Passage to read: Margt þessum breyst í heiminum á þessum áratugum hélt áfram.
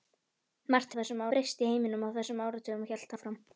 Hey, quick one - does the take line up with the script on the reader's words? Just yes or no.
yes